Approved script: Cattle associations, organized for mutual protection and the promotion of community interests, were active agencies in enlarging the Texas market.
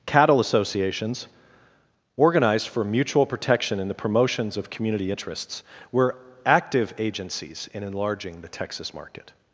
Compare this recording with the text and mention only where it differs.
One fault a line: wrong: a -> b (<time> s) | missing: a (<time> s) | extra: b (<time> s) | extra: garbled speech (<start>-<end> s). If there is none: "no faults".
wrong: promotion -> promotions (4.0 s)